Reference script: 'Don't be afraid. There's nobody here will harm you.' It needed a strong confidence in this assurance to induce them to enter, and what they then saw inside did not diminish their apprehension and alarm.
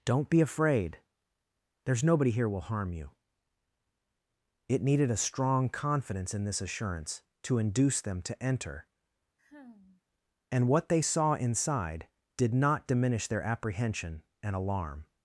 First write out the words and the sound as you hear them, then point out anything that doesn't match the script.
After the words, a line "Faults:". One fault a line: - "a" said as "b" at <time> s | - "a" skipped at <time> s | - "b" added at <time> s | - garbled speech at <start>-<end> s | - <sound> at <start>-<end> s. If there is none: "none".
'Don't be afraid. There's nobody here will harm you.' It needed a strong confidence in this assurance to induce them to enter, and what they saw inside did not diminish their apprehension and alarm.
Faults:
- sigh at 9.4-10.0 s
- "then" skipped at 11.0 s